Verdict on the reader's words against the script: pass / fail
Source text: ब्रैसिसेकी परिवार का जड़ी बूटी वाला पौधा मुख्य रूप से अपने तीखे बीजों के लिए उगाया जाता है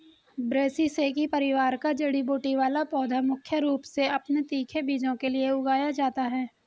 pass